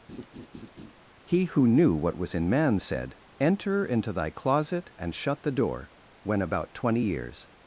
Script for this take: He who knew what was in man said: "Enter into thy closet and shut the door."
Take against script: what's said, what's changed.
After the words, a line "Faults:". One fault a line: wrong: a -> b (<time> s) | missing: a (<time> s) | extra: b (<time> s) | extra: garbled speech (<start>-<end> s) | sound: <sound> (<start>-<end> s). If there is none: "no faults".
He who knew what was in man said: "Enter into thy closet and shut the door." When about twenty years
Faults:
sound: laugh (0.1-0.9 s)
extra: When about twenty years (6.2 s)